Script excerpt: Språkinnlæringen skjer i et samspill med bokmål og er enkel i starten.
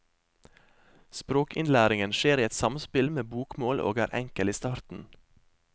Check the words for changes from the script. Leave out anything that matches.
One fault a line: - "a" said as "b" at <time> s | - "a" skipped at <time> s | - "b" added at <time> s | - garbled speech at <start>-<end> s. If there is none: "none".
none